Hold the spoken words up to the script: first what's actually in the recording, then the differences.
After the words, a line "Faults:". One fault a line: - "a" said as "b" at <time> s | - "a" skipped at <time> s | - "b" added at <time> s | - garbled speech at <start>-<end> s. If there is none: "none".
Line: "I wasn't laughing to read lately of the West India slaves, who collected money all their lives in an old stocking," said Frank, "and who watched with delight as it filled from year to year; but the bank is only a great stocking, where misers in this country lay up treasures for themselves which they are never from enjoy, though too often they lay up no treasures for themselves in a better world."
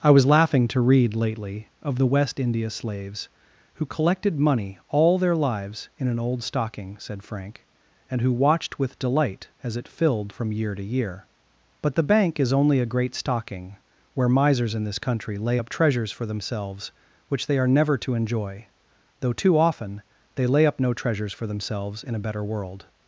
"I was laughing to read lately of the West India slaves, who collected money all their lives in an old stocking," said Frank, "and who watched with delight as it filled from year to year; but the bank is only a great stocking, where misers in this country lay up treasures for themselves which they are never to enjoy, though too often they lay up no treasures for themselves in a better world."
Faults:
- "wasn't" said as "was" at 0.1 s
- "from" said as "to" at 18.0 s